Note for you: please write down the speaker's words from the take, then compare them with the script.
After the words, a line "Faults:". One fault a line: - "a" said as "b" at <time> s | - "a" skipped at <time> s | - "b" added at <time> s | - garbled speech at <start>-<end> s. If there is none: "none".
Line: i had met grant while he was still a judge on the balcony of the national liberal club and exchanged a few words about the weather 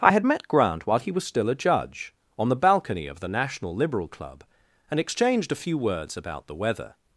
i had met grant while he was still a judge on the balcony of the national liberal club and exchanged a few words about the weather
Faults:
none